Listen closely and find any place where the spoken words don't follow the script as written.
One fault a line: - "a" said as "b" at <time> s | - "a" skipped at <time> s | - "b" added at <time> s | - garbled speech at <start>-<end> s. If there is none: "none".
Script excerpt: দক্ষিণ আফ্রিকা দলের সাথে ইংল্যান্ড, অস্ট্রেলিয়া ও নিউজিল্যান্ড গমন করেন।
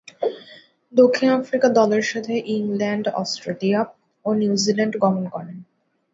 none